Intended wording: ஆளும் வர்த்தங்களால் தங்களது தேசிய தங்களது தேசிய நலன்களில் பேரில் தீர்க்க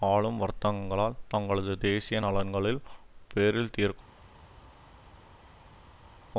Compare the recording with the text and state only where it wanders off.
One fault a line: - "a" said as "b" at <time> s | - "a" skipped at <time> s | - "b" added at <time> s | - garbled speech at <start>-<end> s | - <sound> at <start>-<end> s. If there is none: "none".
- "தங்களது தேசிய" skipped at 2.2 s